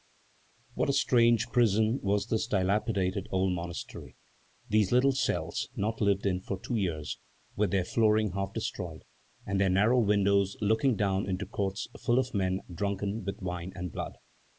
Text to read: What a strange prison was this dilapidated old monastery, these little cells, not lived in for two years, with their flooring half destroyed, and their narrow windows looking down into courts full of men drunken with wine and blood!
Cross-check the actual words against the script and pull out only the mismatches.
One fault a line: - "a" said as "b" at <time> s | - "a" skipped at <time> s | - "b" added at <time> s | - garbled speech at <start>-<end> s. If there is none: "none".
none